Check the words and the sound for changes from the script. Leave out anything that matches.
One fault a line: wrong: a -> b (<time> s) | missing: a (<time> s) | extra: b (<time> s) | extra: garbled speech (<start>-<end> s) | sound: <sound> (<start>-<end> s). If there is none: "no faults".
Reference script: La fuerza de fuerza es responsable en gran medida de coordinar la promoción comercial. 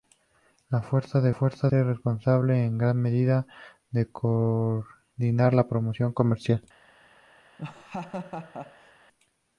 sound: laugh (7.6-8.9 s)